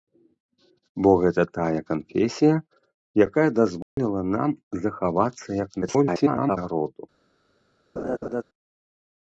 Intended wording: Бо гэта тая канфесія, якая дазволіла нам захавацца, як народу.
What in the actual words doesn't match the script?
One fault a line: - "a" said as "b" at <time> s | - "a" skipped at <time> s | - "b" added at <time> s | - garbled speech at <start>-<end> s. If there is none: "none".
- garbled speech at 5.8-6.6 s